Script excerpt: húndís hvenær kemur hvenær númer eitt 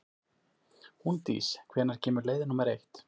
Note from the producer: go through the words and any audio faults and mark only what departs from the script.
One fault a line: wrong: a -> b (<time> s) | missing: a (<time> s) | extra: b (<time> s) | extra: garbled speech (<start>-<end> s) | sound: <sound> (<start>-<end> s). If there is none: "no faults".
wrong: hvenær -> leið (2.3 s)